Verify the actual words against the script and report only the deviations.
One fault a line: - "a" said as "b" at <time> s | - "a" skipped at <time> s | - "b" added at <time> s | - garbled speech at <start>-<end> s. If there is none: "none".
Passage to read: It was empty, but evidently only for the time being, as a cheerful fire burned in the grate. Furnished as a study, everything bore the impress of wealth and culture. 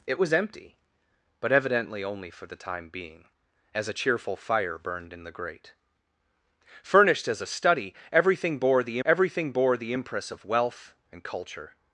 - "everything bore the" added at 9.0 s